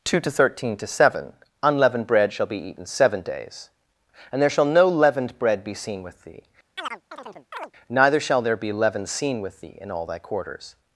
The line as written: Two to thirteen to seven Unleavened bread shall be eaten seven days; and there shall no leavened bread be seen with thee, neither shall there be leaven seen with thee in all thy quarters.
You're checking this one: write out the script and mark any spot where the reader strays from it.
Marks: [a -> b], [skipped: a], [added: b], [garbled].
Two to thirteen to seven Unleavened bread shall be eaten seven days; and there shall no leavened bread be seen with thee, neither shall there be leaven seen with thee in all thy quarters.